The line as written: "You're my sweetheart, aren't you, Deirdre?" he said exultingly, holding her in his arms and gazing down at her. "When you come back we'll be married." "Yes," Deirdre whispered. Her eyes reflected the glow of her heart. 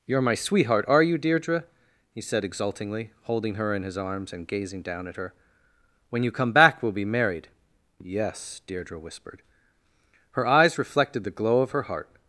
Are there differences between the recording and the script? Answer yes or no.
yes